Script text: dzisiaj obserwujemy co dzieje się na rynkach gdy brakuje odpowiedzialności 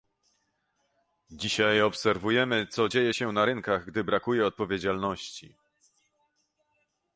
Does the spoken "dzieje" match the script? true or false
true